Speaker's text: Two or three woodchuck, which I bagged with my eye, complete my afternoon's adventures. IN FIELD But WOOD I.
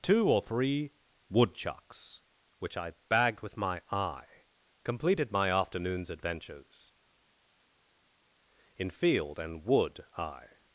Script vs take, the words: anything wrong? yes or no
yes